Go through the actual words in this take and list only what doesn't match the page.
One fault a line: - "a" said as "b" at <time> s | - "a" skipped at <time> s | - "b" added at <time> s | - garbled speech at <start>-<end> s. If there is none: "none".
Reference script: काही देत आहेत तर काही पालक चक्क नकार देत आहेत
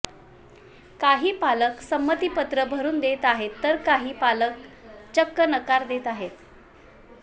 - "पालक संमतीपत्र भरून" added at 1.3 s